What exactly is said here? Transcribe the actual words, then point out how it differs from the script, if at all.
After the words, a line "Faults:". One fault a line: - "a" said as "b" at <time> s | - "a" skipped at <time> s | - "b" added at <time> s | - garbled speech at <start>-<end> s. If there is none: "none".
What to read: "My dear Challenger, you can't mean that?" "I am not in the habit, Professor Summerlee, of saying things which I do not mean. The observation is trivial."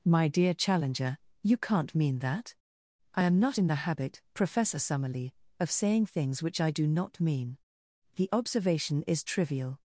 "My dear Challenger, you can't mean that?" "I am not in the habit, Professor Summerlee, of saying things which I do not mean. The observation is trivial."
Faults:
none